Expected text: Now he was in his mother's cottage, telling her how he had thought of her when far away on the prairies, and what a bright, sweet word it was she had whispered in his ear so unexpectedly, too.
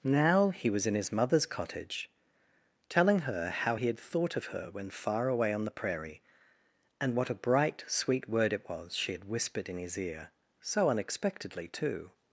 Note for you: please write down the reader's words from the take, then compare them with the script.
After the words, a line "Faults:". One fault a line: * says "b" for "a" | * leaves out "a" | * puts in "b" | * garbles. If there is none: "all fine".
Now he was in his mother's cottage, telling her how he had thought of her when far away on the prairie, and what a bright, sweet word it was she had whispered in his ear so unexpectedly, too.
Faults:
* says "prairie" for "prairies"